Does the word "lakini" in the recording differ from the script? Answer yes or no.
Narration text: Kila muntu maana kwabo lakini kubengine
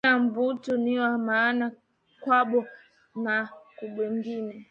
yes